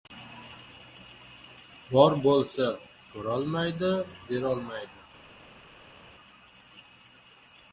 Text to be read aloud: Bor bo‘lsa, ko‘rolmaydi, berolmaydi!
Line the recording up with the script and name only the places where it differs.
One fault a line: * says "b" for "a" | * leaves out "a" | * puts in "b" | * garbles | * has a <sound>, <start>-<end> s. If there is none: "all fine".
all fine